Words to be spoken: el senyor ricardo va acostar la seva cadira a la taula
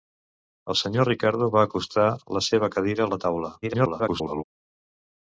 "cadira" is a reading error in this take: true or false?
false